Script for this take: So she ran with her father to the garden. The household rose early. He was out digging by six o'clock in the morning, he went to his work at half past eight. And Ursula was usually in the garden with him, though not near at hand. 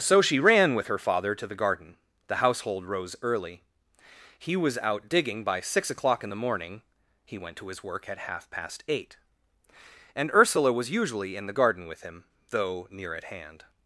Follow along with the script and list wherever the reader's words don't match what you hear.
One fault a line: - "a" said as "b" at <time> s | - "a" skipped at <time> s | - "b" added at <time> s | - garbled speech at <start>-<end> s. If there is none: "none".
- "not" skipped at 12.9 s